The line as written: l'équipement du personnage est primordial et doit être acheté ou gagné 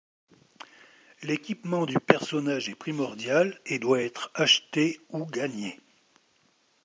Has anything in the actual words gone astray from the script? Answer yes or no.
no